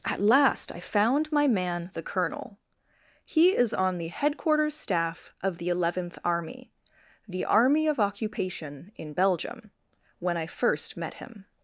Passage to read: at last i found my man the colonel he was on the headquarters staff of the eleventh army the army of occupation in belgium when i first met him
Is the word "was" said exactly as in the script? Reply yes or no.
no